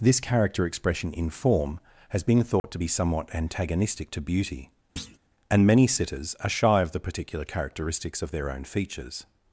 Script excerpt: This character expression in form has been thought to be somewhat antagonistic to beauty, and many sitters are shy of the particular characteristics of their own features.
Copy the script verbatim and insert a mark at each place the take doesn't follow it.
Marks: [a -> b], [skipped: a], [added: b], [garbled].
This character expression in form has been thought to be somewhat antagonistic to beauty, and many sitters are shy of the particular characteristics of their own features.